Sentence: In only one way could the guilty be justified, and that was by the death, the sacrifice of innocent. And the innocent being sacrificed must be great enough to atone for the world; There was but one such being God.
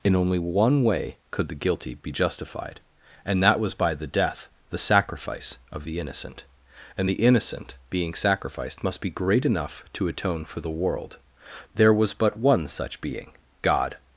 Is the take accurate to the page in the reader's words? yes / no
no